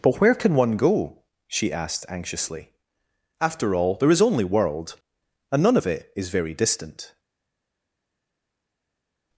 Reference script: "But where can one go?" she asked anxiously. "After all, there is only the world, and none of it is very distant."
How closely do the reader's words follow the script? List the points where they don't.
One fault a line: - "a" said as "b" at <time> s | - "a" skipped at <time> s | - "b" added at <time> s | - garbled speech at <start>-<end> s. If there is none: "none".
- "the" skipped at 4.4 s